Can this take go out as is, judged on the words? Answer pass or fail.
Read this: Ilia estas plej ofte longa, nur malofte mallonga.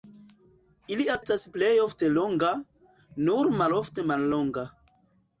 pass